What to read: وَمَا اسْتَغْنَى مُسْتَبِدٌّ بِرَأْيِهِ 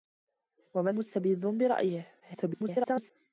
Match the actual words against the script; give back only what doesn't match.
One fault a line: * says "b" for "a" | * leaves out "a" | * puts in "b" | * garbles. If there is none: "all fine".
* leaves out "اسْتَغْنَى"
* garbles